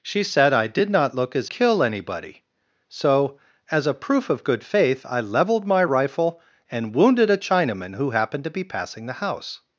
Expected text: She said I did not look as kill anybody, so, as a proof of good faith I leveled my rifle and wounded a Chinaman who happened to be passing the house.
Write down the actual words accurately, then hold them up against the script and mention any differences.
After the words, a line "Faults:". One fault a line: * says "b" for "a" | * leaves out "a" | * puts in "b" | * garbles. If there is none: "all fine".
She said I did not look as kill anybody, so, as a proof of good faith I leveled my rifle and wounded a Chinaman who happened to be passing the house.
Faults:
all fine